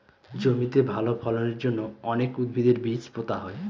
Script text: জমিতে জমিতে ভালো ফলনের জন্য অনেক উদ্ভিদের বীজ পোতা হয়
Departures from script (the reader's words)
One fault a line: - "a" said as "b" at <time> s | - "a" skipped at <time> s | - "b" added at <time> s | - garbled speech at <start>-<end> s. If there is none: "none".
- "জমিতে" skipped at 0.8 s